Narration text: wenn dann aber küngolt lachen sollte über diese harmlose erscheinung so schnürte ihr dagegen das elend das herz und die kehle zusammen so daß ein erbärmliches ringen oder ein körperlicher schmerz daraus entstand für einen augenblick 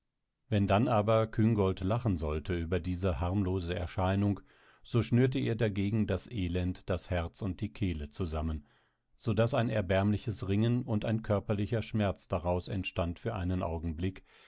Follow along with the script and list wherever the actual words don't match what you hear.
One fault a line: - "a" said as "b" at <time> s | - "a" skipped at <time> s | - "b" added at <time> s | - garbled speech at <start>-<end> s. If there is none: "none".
- "oder" said as "und" at 10.8 s